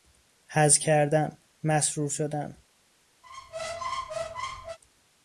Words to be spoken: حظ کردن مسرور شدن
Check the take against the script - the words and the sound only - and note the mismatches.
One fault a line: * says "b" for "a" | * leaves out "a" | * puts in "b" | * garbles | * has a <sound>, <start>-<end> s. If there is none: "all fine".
* has a squeak, 3.2-4.8 s